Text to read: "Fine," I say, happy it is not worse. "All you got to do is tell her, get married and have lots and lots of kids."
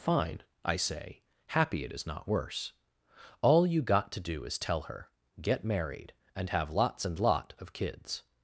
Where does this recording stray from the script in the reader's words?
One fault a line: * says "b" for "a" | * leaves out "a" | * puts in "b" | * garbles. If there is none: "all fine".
* says "lot" for "lots"